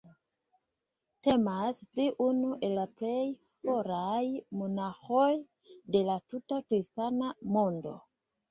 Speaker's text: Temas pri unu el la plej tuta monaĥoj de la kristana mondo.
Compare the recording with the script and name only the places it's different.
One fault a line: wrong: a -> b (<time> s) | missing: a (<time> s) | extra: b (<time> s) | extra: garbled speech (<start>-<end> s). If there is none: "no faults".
wrong: tuta -> foraj (3.7 s)
extra: tuta (6.3 s)